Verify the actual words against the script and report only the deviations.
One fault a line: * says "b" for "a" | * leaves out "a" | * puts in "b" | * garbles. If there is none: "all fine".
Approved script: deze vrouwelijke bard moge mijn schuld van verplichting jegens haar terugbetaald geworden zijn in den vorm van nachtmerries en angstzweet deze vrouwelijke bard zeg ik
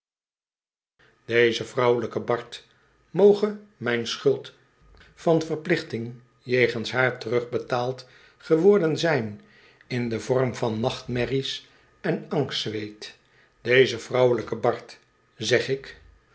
all fine